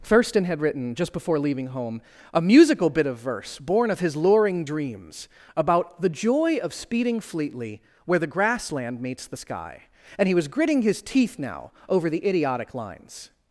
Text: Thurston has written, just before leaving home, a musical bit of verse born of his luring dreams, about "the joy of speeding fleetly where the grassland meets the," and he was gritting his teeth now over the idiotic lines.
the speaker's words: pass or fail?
fail